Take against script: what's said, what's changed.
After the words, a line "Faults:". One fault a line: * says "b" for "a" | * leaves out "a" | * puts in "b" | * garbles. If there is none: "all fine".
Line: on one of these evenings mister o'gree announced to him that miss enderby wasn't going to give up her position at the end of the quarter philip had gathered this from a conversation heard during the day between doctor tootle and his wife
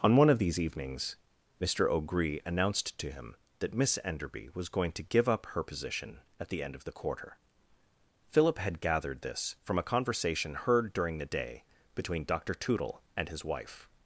on one of these evenings mister o'gree announced to him that miss enderby was going to give up her position at the end of the quarter philip had gathered this from a conversation heard during the day between doctor tootle and his wife
Faults:
* says "was" for "wasn't"